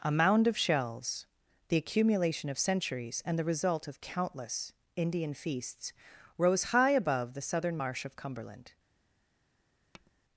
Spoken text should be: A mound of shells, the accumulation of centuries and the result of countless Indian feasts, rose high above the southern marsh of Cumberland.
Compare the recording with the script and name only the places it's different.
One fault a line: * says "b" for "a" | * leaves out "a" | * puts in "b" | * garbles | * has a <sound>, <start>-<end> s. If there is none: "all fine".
* has a tap, 9.9-10.1 s